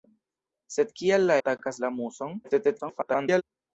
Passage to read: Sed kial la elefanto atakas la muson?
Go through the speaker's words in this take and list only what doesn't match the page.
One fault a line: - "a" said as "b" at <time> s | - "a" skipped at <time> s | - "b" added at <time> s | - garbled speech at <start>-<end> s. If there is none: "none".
- "elefanto" skipped at 1.4 s
- garbled speech at 2.4-3.4 s